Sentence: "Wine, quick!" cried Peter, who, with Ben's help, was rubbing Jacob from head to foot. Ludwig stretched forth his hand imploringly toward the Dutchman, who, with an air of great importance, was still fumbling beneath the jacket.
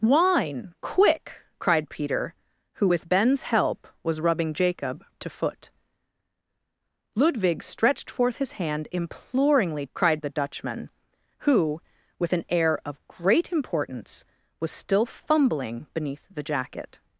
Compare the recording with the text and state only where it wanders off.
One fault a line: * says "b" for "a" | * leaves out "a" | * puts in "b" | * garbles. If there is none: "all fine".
* leaves out "from head"
* says "cried" for "toward"